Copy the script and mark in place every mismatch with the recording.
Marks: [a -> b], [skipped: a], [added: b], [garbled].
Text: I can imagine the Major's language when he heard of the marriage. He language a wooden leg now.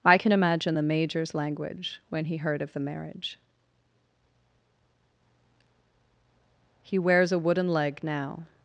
I can imagine the Major's language when he heard of the marriage. He [language -> wears] a wooden leg now.